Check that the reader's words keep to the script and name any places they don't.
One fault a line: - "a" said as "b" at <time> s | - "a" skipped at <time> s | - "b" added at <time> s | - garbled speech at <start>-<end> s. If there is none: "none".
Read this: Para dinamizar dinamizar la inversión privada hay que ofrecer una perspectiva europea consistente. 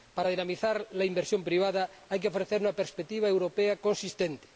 - "dinamizar" skipped at 0.9 s